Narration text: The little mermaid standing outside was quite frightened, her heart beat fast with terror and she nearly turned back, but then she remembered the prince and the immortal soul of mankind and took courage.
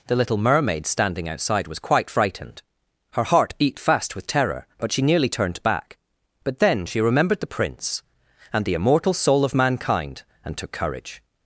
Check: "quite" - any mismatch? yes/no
no